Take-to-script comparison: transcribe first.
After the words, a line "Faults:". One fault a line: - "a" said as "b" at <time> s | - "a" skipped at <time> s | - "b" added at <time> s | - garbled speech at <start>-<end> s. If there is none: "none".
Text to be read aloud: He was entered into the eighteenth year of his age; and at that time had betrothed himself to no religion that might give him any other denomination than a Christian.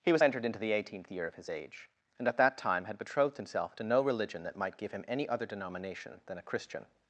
He was entered into the eighteenth year of his age; and at that time had betrothed himself to no religion that might give him any other denomination than a Christian.
Faults:
none